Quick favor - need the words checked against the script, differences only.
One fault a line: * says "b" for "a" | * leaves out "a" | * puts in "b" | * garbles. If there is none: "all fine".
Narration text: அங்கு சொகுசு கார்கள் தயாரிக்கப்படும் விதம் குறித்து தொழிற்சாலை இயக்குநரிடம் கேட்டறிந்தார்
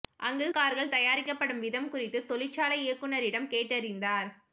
* leaves out "சொகுசு"